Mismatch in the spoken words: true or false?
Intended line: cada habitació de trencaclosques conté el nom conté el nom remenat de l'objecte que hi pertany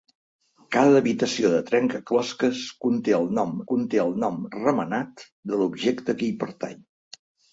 false